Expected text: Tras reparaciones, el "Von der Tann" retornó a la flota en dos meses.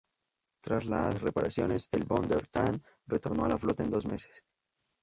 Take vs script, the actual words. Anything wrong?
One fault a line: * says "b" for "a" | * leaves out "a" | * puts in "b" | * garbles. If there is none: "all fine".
* puts in "las"